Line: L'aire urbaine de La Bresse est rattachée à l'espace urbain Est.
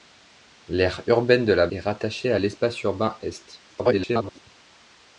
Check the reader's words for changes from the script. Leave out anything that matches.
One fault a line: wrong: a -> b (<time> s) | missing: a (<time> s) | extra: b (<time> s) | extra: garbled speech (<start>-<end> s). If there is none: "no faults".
missing: Bresse (1.7 s)
extra: garbled speech (3.7-4.4 s)